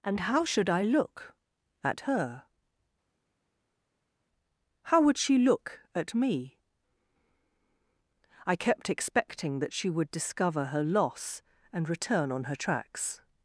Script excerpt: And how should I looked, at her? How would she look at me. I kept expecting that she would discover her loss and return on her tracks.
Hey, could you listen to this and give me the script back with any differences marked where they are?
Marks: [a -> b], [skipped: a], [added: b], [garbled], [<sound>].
And how should I [looked, -> look] at her? How would she look at me. I kept expecting that she would discover her loss and return on her tracks.